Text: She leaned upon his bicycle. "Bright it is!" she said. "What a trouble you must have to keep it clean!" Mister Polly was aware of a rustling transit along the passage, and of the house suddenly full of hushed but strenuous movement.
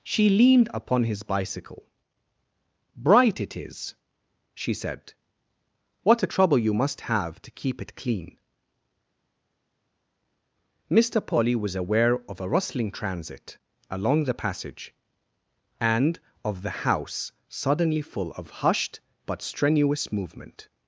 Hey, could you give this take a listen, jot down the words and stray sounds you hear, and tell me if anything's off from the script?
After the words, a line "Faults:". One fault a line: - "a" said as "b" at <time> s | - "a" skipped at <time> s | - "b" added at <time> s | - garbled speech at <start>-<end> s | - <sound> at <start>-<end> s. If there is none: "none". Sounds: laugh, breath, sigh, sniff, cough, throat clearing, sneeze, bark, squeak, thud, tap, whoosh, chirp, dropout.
She leaned upon his bicycle. "Bright it is!" she said. "What a trouble you must have to keep it clean!" Mister Polly was aware of a rustling transit along the passage, and of the house suddenly full of hushed but strenuous movement.
Faults:
none